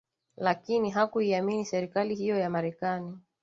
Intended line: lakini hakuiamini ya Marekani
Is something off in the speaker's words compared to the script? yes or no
yes